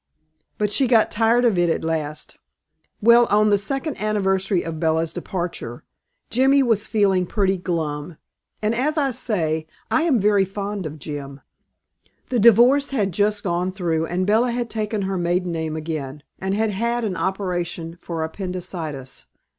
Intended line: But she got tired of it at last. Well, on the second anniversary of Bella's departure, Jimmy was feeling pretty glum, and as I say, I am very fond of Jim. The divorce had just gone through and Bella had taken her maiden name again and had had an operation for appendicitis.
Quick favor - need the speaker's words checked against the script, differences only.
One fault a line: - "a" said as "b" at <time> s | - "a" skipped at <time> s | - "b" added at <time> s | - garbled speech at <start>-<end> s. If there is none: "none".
none